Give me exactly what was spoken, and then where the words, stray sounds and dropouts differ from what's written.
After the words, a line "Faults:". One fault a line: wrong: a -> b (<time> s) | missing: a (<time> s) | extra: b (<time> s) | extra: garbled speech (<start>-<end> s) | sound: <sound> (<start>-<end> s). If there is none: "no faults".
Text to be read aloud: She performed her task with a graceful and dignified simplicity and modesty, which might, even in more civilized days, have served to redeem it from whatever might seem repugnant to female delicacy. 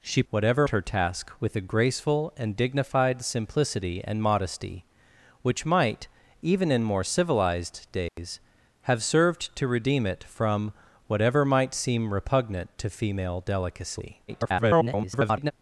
She whatever her task with a graceful and dignified simplicity and modesty, which might, even in more civilized days, have served to redeem it from whatever might seem repugnant to female delicacy. [garbled]
Faults:
wrong: performed -> whatever (0.3 s)
sound: dropout (8.1-8.2 s)
extra: garbled speech (14.3-15.5 s)